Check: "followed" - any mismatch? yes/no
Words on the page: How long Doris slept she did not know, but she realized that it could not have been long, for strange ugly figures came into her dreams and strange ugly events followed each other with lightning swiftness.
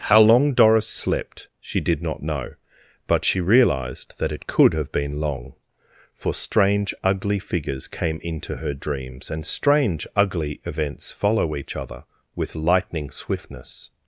yes